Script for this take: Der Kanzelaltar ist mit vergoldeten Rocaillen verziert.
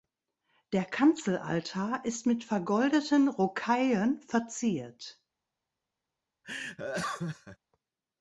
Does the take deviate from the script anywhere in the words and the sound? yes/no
yes